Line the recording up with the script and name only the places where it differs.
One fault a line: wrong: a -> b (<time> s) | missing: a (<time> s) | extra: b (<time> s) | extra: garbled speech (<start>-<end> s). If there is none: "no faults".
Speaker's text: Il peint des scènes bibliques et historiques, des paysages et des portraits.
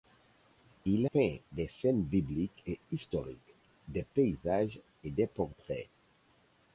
no faults